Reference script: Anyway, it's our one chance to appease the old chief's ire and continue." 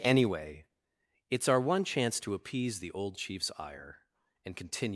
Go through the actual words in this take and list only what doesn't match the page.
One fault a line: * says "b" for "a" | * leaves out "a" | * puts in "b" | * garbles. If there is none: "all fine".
all fine